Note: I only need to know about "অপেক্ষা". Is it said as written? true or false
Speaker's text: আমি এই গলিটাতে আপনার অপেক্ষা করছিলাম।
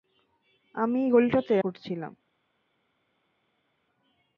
false